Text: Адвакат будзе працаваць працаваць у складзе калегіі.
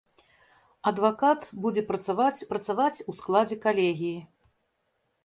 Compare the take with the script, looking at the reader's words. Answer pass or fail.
pass